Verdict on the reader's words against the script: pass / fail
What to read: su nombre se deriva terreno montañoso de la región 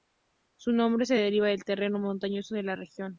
fail